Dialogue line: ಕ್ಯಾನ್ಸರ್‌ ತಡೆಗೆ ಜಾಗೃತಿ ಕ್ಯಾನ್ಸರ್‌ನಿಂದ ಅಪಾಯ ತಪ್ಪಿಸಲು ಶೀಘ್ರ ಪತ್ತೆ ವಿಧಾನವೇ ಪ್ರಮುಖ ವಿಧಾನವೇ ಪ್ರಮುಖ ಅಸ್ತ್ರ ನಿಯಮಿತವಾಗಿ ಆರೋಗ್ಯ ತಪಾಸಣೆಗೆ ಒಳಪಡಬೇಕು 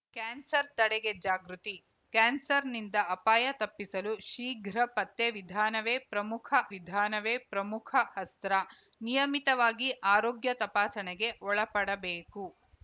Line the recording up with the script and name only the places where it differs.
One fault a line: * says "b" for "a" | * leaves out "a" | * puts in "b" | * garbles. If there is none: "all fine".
all fine